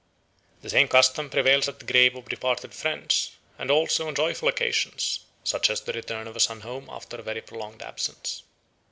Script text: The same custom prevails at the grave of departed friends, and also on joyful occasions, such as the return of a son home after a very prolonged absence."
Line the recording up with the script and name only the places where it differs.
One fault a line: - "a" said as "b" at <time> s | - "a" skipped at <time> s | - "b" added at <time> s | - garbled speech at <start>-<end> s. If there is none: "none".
none